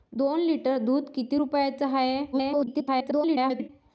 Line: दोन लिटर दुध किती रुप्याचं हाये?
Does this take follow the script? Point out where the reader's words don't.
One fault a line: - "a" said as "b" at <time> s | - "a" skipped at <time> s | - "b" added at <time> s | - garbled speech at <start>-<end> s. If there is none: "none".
- garbled speech at 2.3-3.7 s